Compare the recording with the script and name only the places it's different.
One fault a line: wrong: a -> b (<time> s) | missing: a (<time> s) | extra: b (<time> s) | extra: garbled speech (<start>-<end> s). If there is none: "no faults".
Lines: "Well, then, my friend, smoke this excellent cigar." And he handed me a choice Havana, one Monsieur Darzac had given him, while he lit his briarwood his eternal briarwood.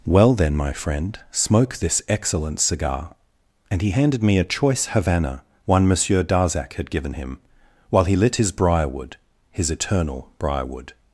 no faults